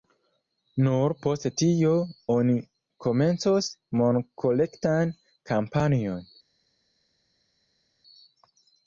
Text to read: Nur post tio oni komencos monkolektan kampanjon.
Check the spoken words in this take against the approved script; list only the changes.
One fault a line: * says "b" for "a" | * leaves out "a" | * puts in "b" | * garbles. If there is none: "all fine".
all fine